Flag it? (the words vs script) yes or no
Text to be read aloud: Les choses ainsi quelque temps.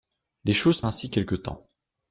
no